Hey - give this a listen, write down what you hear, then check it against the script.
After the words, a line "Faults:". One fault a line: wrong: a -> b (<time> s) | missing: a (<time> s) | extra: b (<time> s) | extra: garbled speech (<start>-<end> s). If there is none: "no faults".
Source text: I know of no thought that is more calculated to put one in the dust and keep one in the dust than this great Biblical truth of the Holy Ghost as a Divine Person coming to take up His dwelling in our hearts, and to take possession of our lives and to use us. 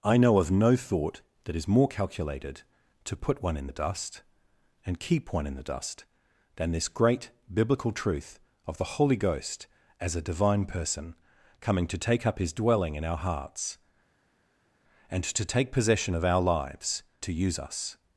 I know of no thought that is more calculated to put one in the dust and keep one in the dust than this great Biblical truth of the Holy Ghost as a Divine Person coming to take up His dwelling in our hearts, and to take possession of our lives to use us.
Faults:
missing: and (17.0 s)